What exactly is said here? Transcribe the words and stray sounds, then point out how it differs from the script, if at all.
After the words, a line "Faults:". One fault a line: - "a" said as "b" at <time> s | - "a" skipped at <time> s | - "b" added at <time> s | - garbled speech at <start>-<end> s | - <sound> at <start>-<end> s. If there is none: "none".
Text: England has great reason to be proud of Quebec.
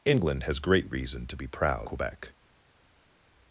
England has great reason to be proud Quebec.
Faults:
- "of" skipped at 1.9 s